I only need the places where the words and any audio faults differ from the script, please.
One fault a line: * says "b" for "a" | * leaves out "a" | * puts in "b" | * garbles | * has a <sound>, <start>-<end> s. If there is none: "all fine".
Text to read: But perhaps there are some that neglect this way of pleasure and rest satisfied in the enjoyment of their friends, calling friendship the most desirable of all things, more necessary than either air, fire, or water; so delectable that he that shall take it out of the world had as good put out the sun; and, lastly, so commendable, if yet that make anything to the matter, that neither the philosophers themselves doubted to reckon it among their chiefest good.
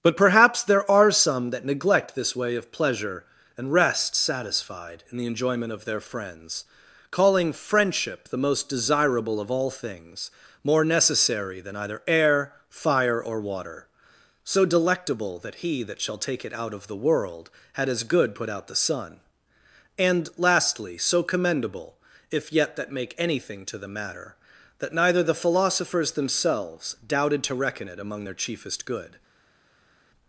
all fine